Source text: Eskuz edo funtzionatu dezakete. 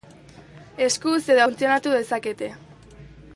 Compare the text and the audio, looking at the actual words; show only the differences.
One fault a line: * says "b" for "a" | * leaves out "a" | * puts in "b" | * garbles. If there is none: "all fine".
all fine